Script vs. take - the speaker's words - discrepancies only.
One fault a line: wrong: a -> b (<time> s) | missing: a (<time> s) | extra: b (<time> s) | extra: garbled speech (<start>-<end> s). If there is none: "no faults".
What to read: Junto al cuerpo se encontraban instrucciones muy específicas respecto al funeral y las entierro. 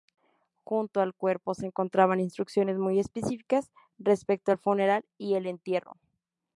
wrong: las -> el (5.3 s)